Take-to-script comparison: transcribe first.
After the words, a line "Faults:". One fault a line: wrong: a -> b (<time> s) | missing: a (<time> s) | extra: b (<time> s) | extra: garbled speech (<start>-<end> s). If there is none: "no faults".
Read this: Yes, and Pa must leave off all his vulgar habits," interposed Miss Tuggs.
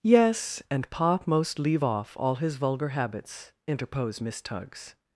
Yes, and Pa most leave off all his vulgar habits," interposed Miss Tuggs.
Faults:
wrong: must -> most (1.2 s)